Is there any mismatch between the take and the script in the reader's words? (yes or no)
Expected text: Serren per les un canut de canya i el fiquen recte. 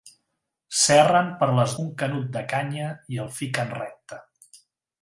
no